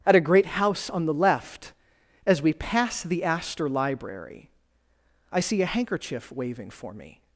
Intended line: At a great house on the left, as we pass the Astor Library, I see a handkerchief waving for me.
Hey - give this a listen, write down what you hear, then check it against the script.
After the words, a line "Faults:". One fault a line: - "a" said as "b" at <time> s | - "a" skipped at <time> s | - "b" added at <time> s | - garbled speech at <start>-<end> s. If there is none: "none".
At a great house on the left, as we pass the Astor Library, I see a handkerchief waving for me.
Faults:
none